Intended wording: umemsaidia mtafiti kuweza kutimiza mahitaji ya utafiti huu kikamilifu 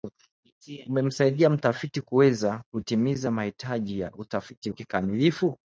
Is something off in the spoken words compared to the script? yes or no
yes